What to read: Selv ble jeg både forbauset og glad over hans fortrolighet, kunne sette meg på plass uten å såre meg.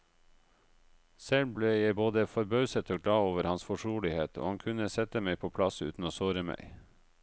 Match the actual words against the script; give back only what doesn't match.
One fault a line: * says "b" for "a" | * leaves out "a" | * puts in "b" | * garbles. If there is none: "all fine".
* puts in "og han"